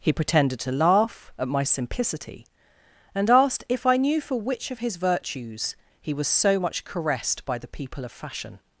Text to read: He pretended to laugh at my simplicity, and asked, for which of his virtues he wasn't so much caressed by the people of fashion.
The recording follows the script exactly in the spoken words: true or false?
false